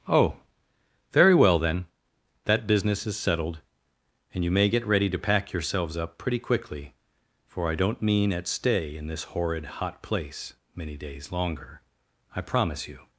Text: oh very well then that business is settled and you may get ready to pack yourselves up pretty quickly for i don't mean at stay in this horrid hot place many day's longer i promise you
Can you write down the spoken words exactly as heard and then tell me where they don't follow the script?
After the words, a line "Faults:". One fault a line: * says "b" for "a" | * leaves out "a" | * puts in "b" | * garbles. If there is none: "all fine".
oh very well then that business is settled and you may get ready to pack yourselves up pretty quickly for i don't mean at stay in this horrid hot place many day's longer i promise you
Faults:
all fine